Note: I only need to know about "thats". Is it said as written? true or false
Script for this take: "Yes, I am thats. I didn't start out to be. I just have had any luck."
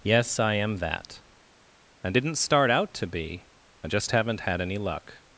false